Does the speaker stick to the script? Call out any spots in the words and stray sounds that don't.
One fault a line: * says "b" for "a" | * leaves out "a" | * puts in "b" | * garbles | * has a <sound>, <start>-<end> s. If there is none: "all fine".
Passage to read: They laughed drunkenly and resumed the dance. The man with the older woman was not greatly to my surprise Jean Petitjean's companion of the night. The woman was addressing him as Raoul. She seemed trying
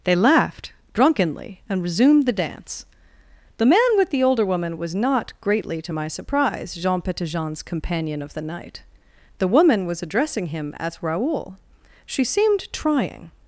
all fine